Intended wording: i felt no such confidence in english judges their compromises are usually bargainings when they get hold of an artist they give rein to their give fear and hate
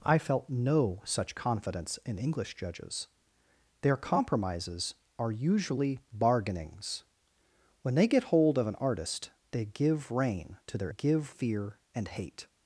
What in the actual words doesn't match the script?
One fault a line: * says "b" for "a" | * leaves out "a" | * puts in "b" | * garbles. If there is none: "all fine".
all fine